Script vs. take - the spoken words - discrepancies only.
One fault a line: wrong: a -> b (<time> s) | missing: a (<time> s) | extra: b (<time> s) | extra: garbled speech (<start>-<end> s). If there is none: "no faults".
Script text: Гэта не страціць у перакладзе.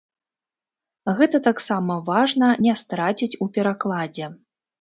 extra: таксама важна (1.5 s)